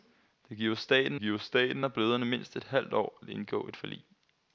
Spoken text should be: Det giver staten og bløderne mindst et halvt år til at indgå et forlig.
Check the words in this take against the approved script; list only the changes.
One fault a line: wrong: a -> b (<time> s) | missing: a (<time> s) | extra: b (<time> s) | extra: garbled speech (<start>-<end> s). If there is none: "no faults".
extra: giver staten (1.2 s)
missing: til (3.2 s)